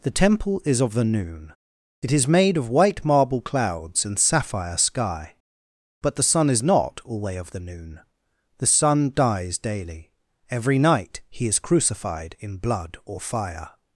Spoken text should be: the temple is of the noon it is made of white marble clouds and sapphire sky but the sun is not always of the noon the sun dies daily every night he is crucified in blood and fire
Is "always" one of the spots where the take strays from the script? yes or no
yes